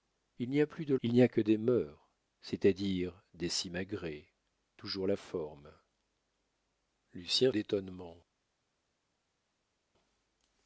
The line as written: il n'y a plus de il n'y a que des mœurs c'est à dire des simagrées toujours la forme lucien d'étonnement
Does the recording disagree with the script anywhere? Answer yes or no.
no